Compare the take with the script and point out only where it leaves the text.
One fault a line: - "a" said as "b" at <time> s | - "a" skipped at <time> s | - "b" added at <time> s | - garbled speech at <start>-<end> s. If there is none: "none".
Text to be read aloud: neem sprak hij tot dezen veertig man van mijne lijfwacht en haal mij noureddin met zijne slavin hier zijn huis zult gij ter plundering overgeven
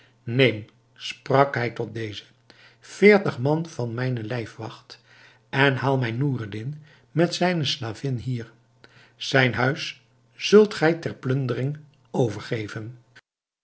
none